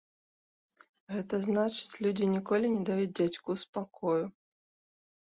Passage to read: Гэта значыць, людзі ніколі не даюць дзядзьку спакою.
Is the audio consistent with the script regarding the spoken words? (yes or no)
yes